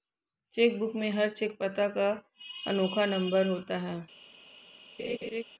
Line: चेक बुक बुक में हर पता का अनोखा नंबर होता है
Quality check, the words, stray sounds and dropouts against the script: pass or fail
fail